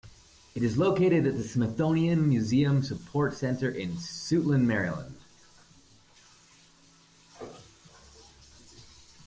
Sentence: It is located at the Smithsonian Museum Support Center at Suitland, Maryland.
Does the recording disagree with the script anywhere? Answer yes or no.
yes